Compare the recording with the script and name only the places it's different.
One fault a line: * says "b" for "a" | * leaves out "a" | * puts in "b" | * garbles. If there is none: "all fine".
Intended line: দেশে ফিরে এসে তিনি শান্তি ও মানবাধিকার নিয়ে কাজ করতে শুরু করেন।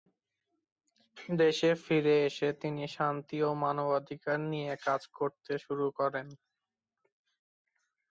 all fine